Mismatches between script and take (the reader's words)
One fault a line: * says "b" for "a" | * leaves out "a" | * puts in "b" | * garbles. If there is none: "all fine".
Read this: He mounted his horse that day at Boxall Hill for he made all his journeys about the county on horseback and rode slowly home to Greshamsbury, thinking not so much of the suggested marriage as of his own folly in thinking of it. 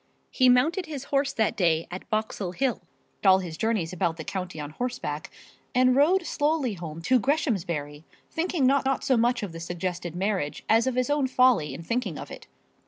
* leaves out "for he made"
* puts in "not"